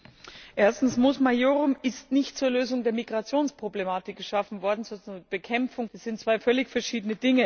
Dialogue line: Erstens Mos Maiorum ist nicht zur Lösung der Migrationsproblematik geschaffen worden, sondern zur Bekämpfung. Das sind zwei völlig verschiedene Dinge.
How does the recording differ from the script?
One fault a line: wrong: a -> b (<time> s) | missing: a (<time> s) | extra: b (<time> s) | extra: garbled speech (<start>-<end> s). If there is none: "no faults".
no faults